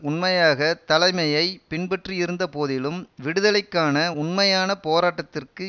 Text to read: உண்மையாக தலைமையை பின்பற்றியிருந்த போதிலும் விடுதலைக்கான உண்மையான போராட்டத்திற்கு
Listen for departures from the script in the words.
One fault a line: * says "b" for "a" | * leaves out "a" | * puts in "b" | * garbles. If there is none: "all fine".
all fine